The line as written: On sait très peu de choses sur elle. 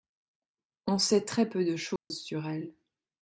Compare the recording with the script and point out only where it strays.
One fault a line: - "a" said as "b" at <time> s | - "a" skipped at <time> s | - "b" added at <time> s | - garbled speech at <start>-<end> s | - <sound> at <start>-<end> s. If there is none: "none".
- dropout at 2.0-2.1 s